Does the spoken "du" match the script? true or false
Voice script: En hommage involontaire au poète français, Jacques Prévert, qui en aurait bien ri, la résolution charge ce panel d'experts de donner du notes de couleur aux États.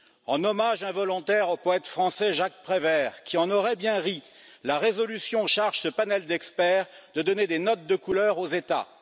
false